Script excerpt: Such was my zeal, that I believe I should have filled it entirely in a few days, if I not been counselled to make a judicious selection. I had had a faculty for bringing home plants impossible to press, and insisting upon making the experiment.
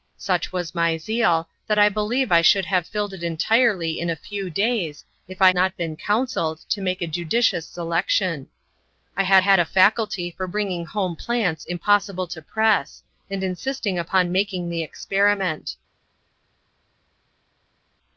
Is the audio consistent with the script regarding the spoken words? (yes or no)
yes